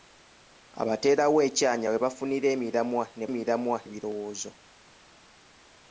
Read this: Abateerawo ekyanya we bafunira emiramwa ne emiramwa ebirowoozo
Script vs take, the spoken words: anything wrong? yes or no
no